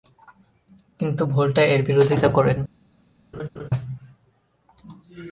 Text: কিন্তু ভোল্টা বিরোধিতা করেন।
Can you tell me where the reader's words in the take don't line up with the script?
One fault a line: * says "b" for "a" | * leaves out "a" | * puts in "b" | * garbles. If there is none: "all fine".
* puts in "এর"